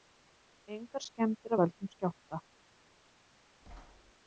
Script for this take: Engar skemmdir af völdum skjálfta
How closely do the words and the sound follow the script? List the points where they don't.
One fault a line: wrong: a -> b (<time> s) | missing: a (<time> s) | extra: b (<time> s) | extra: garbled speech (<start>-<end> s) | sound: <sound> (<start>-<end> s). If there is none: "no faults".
sound: thud (3.6-4.1 s)